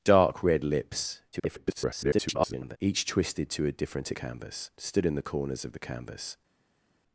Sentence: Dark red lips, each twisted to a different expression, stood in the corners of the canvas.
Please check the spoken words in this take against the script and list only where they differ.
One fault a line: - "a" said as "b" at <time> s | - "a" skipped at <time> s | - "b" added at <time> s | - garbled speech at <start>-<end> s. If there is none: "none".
- garbled speech at 1.3-2.8 s
- "expression" said as "canvas" at 4.1 s